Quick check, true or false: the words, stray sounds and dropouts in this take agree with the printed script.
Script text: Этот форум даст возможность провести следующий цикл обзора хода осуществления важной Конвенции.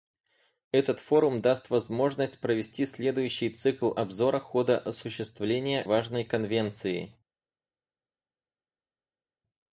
true